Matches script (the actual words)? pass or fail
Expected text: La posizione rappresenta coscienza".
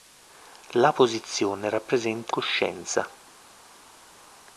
pass